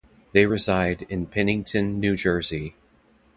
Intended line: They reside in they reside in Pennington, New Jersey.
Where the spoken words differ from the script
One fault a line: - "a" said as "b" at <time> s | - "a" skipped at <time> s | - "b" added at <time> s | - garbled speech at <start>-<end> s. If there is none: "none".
- "they reside in" skipped at 1.3 s